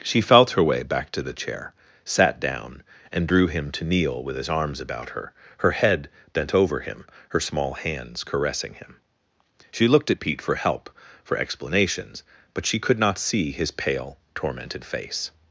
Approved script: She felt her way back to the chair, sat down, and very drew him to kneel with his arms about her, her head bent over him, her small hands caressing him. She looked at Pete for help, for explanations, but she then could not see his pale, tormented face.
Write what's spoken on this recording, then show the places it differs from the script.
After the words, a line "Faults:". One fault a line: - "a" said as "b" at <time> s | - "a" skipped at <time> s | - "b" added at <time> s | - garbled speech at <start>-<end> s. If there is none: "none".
She felt her way back to the chair, sat down, and drew him to kneel with his arms about her, her head bent over him, her small hands caressing him. She looked at Pete for help, for explanations, but she could not see his pale, tormented face.
Faults:
- "very" skipped at 3.3 s
- "then" skipped at 12.8 s